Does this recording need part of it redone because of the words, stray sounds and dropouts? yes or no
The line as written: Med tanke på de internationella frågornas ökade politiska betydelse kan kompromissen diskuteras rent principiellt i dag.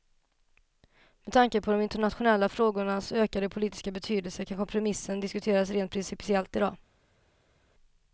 no